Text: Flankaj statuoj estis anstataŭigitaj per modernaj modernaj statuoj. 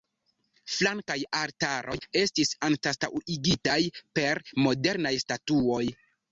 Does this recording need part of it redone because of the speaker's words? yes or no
yes